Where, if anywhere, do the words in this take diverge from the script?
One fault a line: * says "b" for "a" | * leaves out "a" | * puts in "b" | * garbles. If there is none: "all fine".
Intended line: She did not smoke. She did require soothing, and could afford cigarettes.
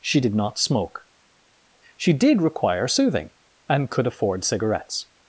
all fine